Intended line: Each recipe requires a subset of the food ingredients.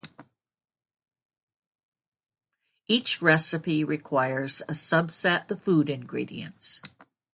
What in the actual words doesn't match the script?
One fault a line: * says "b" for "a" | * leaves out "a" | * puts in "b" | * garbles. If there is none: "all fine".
* leaves out "of"